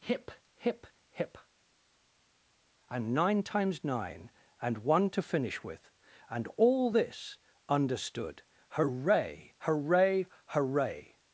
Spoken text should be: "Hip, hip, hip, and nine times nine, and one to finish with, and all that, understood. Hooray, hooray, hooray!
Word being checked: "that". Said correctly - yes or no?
no